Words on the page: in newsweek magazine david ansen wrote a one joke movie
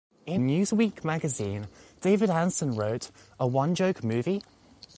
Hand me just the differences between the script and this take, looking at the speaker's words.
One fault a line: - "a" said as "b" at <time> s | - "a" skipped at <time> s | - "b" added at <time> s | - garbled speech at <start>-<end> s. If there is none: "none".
none